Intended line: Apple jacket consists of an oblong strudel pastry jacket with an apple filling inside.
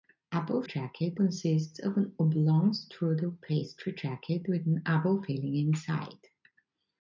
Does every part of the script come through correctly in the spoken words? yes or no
yes